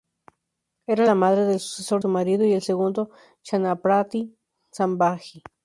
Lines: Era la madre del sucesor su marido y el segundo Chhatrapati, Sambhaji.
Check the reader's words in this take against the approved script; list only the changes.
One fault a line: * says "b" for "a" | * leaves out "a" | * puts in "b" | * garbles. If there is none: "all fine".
all fine